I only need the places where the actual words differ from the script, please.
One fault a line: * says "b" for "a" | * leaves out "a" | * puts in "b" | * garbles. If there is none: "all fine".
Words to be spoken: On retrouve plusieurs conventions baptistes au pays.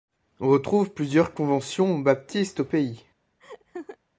all fine